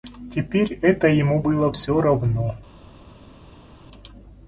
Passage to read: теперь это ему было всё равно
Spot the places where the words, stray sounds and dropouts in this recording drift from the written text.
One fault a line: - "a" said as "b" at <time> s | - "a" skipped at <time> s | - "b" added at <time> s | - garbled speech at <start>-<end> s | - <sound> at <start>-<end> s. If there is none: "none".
none